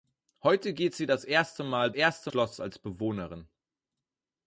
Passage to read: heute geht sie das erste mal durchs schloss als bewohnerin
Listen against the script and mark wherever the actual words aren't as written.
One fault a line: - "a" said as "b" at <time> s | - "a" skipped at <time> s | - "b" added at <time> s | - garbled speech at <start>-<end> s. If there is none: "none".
- "durchs" said as "erste" at 1.9 s